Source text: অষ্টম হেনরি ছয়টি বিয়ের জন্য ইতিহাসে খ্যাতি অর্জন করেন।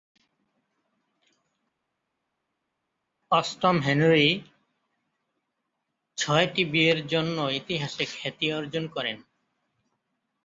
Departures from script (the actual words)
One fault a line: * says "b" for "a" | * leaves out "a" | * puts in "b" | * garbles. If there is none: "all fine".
all fine